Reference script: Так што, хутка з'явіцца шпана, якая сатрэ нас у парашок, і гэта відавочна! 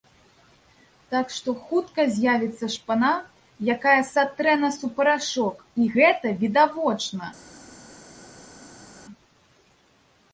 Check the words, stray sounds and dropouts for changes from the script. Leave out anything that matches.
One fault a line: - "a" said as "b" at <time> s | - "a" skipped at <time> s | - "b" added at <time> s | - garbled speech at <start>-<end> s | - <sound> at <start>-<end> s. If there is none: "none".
none